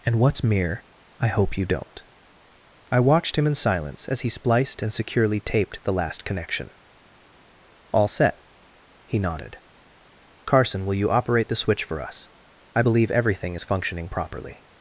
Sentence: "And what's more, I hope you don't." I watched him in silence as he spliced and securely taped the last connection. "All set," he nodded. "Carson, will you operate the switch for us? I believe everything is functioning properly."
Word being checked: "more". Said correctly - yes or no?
no